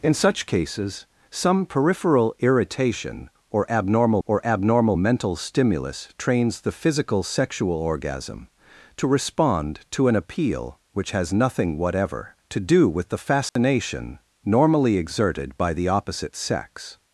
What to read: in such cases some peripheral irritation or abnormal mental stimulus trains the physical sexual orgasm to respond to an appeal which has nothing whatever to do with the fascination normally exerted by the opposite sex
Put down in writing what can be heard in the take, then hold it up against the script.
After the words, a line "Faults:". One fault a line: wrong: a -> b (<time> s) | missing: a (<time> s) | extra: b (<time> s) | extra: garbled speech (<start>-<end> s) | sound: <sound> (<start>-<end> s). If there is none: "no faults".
in such cases some peripheral irritation or abnormal or abnormal mental stimulus trains the physical sexual orgasm to respond to an appeal which has nothing whatever to do with the fascination normally exerted by the opposite sex
Faults:
extra: or abnormal (4.3 s)
sound: dropout (13.5-13.6 s)